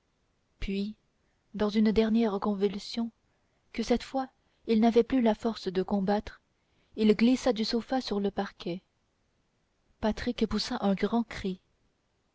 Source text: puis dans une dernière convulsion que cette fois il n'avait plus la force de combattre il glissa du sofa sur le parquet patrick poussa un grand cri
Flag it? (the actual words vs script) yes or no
no